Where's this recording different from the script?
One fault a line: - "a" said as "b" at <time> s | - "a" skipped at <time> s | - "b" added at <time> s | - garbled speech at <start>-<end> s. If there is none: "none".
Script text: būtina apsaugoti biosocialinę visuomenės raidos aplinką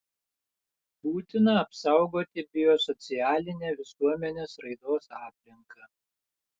none